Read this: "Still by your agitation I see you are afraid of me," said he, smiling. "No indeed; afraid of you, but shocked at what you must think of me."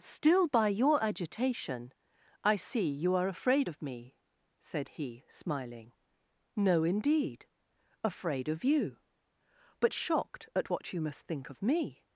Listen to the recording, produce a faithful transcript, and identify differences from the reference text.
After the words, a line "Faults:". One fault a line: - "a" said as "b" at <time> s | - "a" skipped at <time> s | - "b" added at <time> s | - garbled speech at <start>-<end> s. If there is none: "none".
"Still by your agitation I see you are afraid of me," said he, smiling. "No indeed; afraid of you, but shocked at what you must think of me."
Faults:
none